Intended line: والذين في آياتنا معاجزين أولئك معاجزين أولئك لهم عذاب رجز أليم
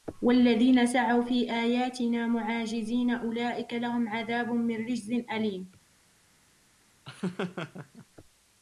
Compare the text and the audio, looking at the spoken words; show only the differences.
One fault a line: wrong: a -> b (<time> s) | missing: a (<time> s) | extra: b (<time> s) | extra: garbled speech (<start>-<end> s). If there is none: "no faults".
extra: سعوا (0.8 s)
missing: معاجزين أولئك (3.7 s)
extra: من (4.5 s)